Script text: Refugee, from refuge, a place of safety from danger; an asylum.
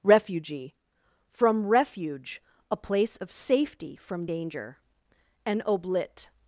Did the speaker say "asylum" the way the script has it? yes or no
no